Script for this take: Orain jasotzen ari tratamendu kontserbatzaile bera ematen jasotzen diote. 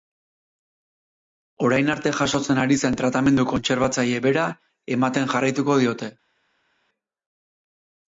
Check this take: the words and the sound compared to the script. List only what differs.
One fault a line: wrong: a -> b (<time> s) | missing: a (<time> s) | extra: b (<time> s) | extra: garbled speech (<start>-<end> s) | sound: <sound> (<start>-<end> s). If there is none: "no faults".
extra: arte (1.9 s)
extra: zen (2.9 s)
wrong: jasotzen -> jarraituko (5.3 s)